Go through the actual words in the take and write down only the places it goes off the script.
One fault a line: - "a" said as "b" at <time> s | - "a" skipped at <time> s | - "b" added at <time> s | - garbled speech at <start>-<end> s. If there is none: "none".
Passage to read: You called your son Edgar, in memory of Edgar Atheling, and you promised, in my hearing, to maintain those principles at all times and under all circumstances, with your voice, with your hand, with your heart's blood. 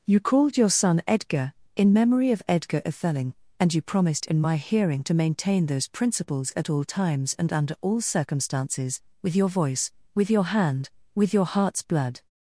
none